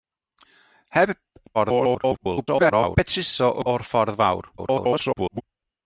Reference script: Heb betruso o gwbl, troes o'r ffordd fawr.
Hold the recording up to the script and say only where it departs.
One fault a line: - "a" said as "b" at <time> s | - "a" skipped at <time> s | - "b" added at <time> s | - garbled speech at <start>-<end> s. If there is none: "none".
- garbled speech at 1.5-3.0 s
- "gwbl troes" skipped at 3.6 s
- garbled speech at 4.6-5.4 s